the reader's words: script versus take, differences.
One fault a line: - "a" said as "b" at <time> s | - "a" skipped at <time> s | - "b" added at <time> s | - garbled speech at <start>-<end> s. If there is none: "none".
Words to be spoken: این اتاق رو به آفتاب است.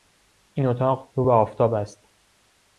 none